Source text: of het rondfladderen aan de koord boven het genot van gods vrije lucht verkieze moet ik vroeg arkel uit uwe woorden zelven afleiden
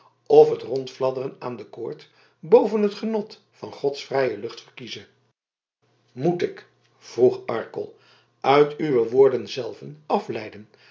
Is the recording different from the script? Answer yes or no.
no